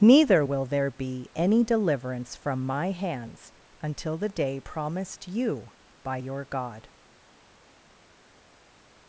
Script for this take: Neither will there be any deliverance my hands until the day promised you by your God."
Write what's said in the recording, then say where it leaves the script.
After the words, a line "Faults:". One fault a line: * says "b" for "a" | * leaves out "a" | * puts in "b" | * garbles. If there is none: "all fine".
Neither will there be any deliverance from my hands until the day promised you by your God."
Faults:
* puts in "from"